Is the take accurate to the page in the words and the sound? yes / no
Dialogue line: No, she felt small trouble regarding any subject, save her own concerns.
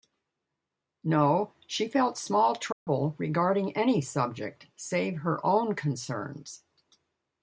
no